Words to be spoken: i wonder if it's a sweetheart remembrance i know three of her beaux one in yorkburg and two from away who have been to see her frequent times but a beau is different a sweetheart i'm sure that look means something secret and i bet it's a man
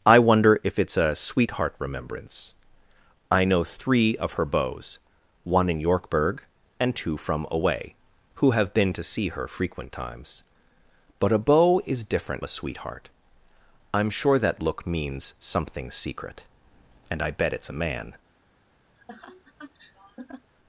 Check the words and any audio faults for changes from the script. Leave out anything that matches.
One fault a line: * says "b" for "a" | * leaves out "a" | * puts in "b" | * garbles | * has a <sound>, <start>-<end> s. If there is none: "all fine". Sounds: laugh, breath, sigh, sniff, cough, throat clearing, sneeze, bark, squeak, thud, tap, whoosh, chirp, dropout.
* has a laugh, 19.0-20.5 s